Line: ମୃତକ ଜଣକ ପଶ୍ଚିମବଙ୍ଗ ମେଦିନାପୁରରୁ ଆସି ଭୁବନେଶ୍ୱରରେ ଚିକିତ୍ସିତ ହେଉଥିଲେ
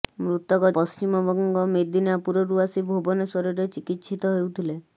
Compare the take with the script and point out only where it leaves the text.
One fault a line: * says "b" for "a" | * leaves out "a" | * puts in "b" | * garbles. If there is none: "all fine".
* leaves out "ଜଣକ"